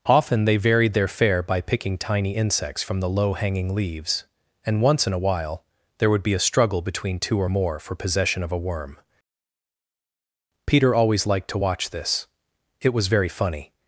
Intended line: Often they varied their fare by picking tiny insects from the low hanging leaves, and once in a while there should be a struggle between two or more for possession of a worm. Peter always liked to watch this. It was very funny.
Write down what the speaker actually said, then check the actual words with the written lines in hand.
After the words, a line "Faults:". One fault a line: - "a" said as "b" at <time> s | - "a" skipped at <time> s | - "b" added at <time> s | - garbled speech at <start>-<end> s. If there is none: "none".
Often they varied their fare by picking tiny insects from the low hanging leaves, and once in a while there would be a struggle between two or more for possession of a worm. Peter always liked to watch this. It was very funny.
Faults:
- "should" said as "would" at 6.1 s